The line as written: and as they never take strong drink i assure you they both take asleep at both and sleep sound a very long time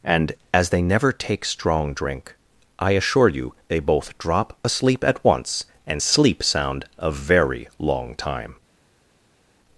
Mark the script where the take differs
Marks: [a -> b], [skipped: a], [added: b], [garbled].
and as they never take strong drink i assure you they both [take -> drop] asleep at [both -> once] and sleep sound a very long time